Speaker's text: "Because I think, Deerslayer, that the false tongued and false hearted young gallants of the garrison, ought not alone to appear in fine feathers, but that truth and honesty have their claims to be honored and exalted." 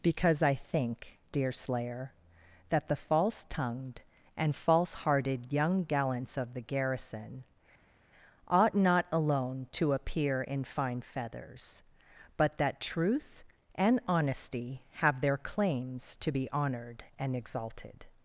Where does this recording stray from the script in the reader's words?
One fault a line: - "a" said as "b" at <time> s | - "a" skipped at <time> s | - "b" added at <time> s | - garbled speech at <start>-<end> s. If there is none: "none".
none